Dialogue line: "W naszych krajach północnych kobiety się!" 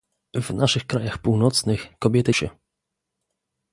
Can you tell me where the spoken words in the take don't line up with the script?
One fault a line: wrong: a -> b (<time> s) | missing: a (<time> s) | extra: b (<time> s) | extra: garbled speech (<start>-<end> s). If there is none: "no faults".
no faults